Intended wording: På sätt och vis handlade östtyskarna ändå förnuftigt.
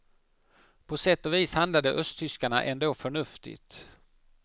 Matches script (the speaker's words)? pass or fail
pass